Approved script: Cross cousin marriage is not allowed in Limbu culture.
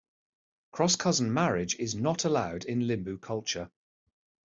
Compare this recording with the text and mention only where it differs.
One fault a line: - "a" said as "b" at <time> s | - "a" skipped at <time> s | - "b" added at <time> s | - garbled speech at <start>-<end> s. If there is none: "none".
none